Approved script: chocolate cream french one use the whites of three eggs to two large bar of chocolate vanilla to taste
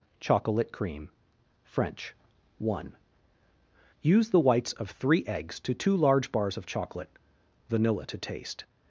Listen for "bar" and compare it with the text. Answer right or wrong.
wrong